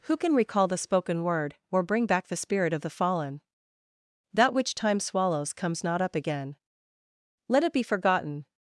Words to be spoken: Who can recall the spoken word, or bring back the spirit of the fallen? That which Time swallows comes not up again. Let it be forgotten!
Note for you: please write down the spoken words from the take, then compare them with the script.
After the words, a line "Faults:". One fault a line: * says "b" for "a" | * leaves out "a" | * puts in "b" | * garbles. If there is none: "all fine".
Who can recall the spoken word, or bring back the spirit of the fallen? That which Time swallows comes not up again. Let it be forgotten!
Faults:
all fine